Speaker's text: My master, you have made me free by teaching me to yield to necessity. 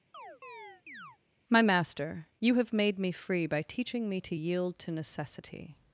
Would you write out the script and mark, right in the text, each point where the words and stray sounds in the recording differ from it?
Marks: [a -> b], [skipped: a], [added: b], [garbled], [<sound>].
[chirp] My master, you have made me free by teaching me to yield to necessity.